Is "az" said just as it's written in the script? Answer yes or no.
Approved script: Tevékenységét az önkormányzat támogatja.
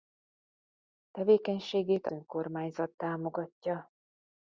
no